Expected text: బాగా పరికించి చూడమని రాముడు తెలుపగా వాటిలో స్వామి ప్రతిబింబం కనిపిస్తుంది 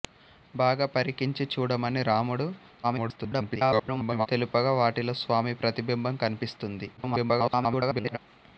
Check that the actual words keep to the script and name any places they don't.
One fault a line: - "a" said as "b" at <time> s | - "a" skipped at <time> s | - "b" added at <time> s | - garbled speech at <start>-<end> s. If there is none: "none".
- garbled speech at 2.8-4.3 s
- garbled speech at 7.0-8.2 s